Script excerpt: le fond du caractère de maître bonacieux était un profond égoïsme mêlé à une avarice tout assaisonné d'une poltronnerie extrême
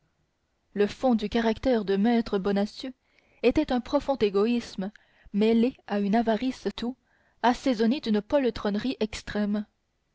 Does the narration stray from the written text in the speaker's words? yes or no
no